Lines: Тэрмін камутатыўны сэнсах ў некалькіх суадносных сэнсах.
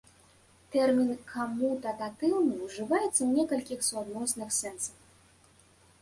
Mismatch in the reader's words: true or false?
true